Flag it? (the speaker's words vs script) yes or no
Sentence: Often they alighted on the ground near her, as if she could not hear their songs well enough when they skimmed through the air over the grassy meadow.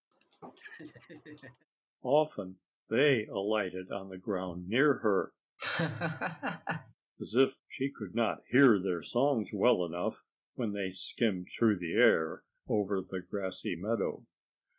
no